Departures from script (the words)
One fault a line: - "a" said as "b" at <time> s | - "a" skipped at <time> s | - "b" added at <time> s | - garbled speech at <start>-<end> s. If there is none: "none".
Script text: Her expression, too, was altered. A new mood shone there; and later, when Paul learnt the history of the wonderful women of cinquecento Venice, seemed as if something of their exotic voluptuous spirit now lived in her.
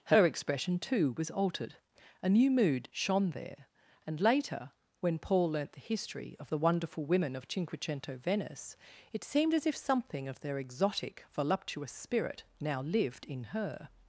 - "it" added at 9.1 s